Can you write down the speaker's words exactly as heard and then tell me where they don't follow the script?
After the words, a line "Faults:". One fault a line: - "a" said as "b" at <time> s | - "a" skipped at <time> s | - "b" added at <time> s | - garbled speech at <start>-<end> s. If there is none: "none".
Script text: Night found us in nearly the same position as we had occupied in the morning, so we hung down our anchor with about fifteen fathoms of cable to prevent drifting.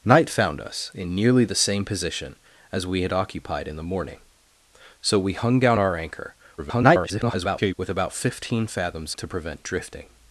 Night found us in nearly the same position as we had occupied in the morning, so we hung down our anchor [garbled] with about fifteen fathoms to prevent drifting.
Faults:
- garbled speech at 6.6-7.7 s
- "of cable" skipped at 9.1 s